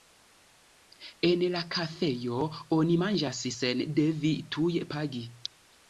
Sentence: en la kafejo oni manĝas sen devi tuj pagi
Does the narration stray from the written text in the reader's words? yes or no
no